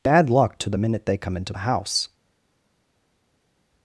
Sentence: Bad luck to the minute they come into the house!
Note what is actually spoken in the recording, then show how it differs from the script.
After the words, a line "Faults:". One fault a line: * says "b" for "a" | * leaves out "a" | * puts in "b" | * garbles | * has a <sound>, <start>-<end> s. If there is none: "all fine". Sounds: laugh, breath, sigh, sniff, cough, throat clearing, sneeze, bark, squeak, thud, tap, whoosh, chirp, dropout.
Bad luck to the minute they come into the house!
Faults:
all fine